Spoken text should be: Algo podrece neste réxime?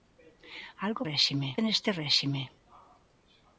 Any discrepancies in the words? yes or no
yes